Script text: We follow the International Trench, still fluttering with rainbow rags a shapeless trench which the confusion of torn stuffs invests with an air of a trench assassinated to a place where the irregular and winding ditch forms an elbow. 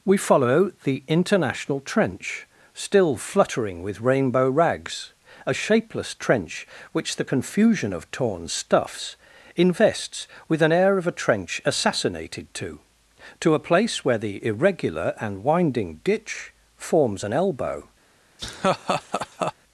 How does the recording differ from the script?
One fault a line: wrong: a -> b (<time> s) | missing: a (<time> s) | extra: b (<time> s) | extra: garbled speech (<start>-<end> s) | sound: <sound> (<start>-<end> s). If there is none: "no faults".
extra: to (13.4 s)
sound: laugh (18.4-19.5 s)